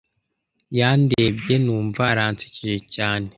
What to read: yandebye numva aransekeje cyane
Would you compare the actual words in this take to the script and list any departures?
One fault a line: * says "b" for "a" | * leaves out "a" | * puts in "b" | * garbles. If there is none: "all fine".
all fine